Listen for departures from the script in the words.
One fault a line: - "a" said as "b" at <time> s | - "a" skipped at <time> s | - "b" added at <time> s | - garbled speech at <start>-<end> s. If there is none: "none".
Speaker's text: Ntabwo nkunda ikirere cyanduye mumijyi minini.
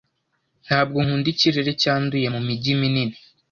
none